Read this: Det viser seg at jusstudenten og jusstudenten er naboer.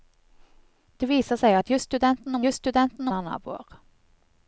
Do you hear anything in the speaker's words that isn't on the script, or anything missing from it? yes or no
no